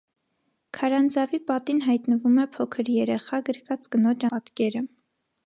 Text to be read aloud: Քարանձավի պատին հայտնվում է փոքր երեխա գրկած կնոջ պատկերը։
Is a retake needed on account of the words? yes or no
no